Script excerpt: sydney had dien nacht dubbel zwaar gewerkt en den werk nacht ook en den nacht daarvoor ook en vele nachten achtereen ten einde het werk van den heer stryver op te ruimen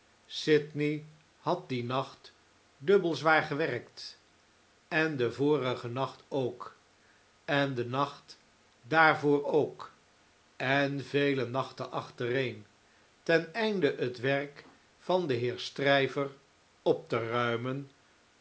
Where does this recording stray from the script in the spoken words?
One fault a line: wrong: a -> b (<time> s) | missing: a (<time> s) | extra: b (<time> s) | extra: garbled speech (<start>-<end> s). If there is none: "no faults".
wrong: werk -> vorigen (5.3 s)